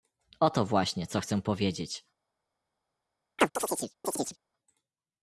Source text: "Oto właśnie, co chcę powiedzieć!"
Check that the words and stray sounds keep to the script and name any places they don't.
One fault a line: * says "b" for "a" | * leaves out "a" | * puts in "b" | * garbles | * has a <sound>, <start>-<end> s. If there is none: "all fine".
* has a chirp, 3.4-4.4 s